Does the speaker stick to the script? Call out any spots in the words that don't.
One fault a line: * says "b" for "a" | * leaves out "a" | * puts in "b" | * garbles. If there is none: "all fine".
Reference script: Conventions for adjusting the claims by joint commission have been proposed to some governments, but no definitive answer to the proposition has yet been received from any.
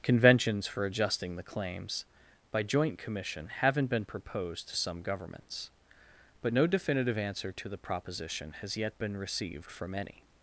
* says "haven't" for "have"